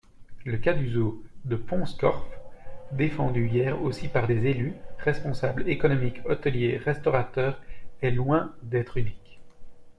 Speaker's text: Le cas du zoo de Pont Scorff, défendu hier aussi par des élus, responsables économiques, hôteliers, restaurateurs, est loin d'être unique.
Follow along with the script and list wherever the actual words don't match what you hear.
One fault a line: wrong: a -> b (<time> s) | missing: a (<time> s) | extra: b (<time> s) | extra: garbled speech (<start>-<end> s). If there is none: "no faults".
no faults